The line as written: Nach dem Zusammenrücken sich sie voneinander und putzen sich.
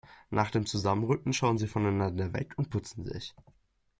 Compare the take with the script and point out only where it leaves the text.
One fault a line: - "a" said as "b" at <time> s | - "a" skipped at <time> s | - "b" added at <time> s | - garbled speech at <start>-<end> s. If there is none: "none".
- "sich" said as "schauen" at 1.3 s
- "weg" added at 2.3 s